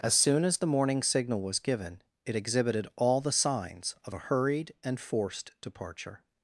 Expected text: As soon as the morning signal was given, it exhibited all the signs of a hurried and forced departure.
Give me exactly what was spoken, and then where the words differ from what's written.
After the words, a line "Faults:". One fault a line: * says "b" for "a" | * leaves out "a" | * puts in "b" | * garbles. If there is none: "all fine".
As soon as the morning signal was given, it exhibited all the signs of a hurried and forced departure.
Faults:
all fine